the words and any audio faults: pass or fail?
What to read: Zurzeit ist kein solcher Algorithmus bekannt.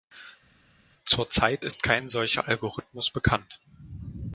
pass